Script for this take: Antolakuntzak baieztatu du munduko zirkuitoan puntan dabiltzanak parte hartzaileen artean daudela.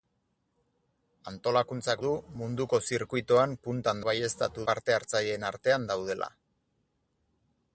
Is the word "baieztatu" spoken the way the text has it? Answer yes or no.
no